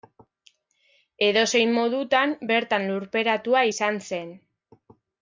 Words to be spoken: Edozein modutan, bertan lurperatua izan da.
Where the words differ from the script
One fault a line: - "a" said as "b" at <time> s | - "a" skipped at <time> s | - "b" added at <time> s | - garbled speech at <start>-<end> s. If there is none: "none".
- "da" said as "zen" at 4.1 s